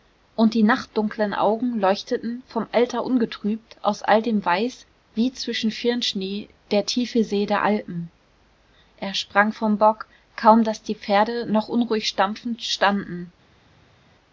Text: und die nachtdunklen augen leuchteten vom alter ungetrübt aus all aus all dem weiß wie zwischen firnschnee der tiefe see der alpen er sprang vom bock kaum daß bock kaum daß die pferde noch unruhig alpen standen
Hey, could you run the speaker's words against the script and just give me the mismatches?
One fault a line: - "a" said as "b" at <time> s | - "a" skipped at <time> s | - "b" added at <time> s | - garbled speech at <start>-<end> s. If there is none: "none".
- "aus all" skipped at 4.2 s
- "bock kaum daß" skipped at 10.8 s
- "alpen" said as "stampfend" at 12.1 s